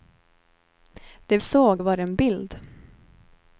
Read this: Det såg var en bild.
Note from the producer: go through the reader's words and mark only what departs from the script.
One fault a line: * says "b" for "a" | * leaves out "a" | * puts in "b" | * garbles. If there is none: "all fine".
all fine